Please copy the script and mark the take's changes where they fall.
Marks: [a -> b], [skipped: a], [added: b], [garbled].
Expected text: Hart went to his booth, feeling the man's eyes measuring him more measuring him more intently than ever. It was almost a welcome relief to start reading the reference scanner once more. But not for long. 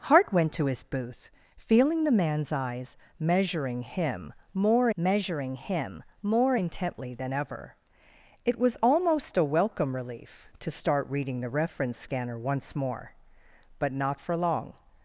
Hart went to his booth, feeling the man's eyes measuring him more measuring him more intently than ever. It was almost a welcome relief to start reading the reference scanner once more. But not for long.